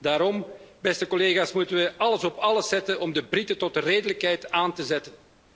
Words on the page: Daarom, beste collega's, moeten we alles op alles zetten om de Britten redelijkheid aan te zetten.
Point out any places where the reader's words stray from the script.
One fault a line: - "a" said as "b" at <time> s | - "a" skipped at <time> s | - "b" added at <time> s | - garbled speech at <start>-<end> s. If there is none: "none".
- "tot" added at 3.6 s